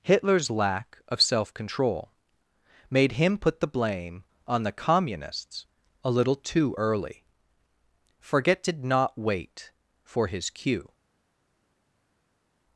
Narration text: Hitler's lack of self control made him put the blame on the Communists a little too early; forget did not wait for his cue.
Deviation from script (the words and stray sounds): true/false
false